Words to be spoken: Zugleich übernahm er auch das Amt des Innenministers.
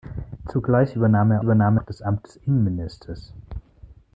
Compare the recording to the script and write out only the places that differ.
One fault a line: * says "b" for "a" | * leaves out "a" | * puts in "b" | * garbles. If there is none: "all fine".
* says "übernahm" for "auch"